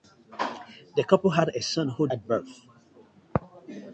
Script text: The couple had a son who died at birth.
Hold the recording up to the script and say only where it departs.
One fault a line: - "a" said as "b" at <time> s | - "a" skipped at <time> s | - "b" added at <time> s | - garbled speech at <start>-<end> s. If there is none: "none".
- "died" skipped at 2.1 s